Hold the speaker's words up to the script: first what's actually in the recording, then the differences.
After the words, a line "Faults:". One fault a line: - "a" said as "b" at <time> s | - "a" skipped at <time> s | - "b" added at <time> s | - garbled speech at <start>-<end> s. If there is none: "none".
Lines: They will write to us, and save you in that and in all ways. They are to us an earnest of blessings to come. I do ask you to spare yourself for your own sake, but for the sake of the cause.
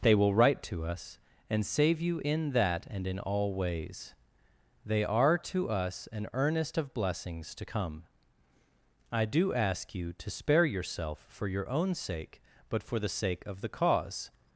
They will write to us, and save you in that and in all ways. They are to us an earnest of blessings to come. I do ask you to spare yourself for your own sake, but for the sake of the cause.
Faults:
none